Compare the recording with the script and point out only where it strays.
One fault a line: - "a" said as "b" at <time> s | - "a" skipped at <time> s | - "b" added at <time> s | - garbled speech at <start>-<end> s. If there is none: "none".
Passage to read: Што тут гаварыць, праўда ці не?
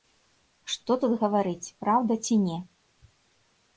none